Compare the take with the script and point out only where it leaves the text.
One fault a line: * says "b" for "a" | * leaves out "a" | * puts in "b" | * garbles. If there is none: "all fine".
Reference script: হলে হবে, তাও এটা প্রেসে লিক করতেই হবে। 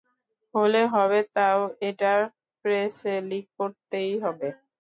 all fine